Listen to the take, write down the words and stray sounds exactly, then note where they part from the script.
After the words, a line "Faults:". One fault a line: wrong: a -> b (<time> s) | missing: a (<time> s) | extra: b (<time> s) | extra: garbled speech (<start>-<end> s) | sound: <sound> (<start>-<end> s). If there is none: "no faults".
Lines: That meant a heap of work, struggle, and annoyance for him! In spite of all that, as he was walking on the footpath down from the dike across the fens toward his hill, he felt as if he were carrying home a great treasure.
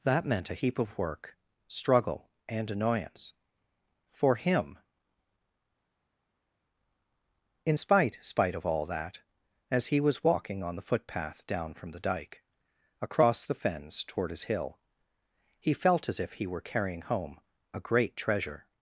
That meant a heap of work, struggle, and annoyance for him! In spite spite of all that, as he was walking on the footpath down from the dike across the fens toward his hill, he felt as if he were carrying home a great treasure.
Faults:
extra: spite (8.2 s)